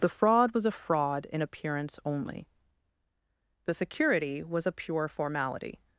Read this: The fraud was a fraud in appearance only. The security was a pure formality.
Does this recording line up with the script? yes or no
yes